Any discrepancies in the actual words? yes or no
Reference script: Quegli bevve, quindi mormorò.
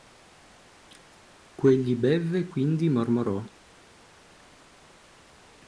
no